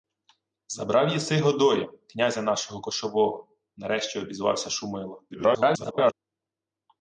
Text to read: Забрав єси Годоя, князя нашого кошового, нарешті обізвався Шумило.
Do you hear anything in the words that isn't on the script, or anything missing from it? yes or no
yes